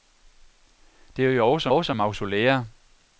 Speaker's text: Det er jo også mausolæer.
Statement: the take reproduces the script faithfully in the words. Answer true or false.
false